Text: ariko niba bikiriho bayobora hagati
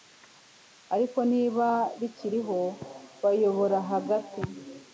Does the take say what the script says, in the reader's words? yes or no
yes